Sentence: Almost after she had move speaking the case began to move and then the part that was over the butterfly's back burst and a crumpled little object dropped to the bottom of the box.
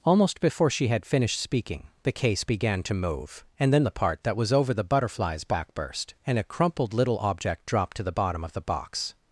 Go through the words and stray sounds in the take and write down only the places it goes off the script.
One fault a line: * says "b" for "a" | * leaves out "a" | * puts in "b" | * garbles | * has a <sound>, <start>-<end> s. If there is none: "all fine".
* says "before" for "after"
* says "finished" for "move"